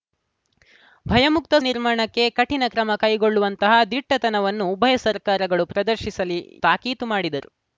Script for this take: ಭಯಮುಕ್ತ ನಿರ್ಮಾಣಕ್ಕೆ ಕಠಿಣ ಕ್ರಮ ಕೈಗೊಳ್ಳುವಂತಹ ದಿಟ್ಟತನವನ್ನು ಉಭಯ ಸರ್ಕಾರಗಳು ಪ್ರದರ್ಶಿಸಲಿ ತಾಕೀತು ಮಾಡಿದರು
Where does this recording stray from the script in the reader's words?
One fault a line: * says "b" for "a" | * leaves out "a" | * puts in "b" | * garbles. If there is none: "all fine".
all fine